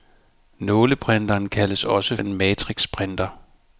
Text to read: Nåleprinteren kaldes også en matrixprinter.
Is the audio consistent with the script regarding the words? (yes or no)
yes